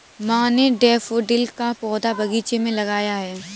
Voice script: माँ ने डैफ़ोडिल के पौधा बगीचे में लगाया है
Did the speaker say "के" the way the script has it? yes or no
no